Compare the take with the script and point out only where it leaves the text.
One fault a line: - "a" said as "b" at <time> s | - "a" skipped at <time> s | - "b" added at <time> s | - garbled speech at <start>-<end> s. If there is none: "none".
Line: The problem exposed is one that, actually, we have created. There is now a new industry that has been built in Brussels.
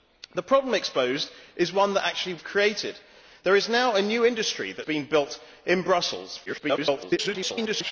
- "we" skipped at 2.4 s
- "has" skipped at 4.8 s
- garbled speech at 6.5-7.9 s